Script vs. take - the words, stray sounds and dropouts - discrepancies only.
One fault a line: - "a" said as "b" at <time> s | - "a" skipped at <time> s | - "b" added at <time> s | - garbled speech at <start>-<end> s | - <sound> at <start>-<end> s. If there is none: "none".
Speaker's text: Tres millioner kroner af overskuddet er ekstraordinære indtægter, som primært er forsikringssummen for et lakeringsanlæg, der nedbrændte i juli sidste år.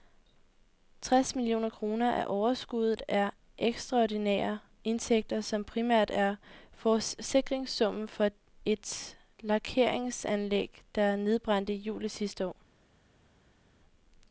none